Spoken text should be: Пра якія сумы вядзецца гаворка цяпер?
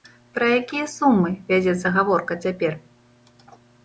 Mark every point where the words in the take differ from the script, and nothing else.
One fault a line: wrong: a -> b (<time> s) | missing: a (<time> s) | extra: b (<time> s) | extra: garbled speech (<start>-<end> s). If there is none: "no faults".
no faults